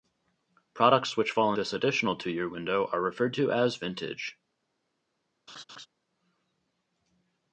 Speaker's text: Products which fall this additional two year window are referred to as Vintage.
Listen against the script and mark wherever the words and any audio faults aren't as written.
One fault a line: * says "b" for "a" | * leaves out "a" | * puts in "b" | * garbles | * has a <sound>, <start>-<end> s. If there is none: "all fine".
* has a laugh, 5.5-5.9 s